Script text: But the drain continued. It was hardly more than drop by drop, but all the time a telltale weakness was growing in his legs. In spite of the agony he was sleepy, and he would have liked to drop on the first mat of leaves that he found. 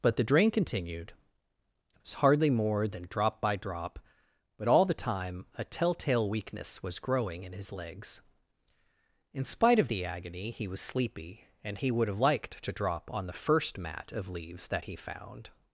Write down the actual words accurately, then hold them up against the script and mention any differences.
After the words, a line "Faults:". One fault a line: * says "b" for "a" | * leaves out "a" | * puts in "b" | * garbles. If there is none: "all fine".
But the drain continued. It was hardly more than drop by drop, but all the time a telltale weakness was growing in his legs. In spite of the agony he was sleepy, and he would have liked to drop on the first mat of leaves that he found.
Faults:
all fine